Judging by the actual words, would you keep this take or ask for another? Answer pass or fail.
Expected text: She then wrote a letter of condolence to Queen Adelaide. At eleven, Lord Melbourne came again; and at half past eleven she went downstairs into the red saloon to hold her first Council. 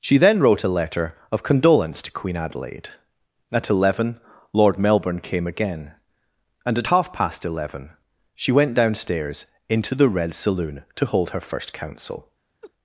pass